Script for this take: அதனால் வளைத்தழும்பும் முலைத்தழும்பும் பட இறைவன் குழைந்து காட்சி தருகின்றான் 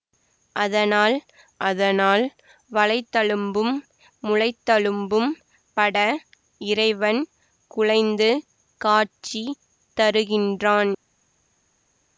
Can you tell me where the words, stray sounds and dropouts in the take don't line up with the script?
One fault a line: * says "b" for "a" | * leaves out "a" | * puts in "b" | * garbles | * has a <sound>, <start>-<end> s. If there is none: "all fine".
* puts in "அதனால்"